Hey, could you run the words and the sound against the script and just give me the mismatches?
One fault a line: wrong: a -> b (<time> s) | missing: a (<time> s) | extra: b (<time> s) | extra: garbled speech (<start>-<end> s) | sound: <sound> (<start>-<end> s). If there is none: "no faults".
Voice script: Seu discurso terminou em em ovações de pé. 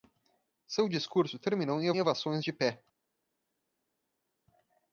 no faults